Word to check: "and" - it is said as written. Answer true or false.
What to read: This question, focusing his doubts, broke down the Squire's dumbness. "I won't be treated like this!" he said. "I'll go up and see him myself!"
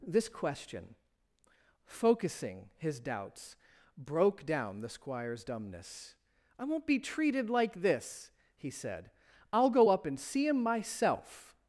true